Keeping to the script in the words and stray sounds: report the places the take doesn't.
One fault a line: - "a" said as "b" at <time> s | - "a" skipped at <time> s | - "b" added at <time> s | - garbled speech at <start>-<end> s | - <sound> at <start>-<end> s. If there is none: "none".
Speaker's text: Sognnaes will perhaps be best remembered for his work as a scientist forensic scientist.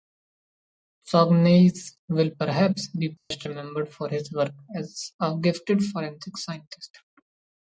- dropout at 3.2-3.3 s
- "scientist" said as "gifted" at 5.4 s